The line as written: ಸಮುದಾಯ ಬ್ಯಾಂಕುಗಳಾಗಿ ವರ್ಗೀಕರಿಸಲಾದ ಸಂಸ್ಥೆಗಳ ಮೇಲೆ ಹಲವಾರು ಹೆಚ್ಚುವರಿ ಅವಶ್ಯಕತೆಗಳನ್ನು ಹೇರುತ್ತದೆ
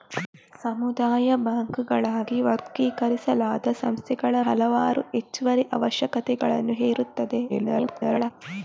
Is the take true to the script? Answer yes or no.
no